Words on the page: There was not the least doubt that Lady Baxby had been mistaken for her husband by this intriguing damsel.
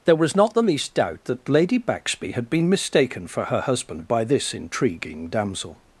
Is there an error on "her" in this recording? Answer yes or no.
no